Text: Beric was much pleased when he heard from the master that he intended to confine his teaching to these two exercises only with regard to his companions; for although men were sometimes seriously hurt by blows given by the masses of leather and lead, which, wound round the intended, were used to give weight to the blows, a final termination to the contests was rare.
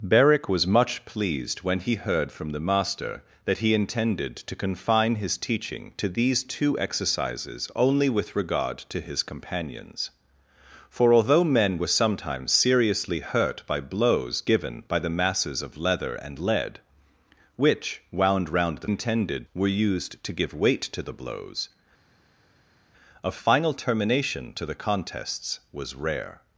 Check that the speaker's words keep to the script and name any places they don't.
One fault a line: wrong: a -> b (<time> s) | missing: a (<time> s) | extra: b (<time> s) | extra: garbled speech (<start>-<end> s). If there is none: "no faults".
no faults